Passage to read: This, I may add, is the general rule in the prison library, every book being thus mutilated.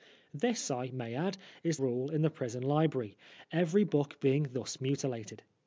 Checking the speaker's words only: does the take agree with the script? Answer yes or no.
no